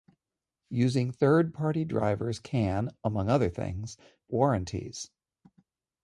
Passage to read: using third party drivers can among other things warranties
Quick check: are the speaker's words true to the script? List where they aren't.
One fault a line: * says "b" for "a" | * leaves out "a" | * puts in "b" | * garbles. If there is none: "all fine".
all fine